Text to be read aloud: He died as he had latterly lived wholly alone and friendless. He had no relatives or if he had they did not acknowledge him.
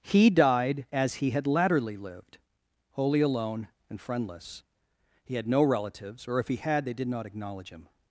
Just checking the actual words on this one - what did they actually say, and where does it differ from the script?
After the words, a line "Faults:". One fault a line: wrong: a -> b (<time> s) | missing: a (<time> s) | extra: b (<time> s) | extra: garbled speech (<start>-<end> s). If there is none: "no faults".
He died as he had latterly lived wholly alone and friendless. He had no relatives or if he had they did not acknowledge him.
Faults:
no faults